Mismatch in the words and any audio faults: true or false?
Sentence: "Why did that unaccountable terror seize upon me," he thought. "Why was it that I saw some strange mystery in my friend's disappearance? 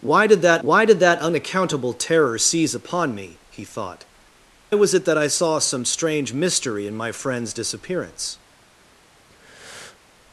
true